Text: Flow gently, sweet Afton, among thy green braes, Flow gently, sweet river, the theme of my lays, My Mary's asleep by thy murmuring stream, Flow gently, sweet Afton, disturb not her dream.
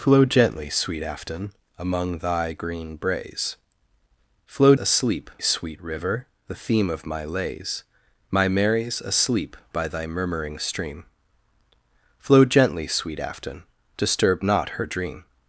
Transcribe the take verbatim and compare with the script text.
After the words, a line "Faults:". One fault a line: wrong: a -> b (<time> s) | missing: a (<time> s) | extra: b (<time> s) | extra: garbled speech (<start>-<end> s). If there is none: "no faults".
Flow gently, sweet Afton, among thy green braes, Flow asleep, sweet river, the theme of my lays, My Mary's asleep by thy murmuring stream, Flow gently, sweet Afton, disturb not her dream.
Faults:
wrong: gently -> asleep (4.7 s)